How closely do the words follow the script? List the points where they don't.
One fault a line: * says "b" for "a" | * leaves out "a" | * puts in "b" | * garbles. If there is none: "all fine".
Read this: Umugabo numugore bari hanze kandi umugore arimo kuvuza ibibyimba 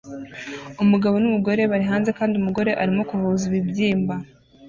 all fine